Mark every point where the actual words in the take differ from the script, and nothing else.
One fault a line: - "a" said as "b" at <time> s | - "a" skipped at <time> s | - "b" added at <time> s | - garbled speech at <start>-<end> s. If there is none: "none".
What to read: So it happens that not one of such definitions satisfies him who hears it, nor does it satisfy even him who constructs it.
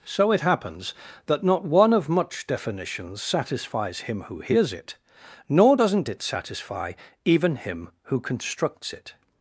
- "such" said as "much" at 2.1 s
- "does" said as "doesn't" at 5.7 s